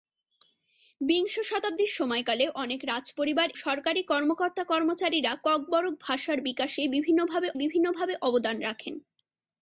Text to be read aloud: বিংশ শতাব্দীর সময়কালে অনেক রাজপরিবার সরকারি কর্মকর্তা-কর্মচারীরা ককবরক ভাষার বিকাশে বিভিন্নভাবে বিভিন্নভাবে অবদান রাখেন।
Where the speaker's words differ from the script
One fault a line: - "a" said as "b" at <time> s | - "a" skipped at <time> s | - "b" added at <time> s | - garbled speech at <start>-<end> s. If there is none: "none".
none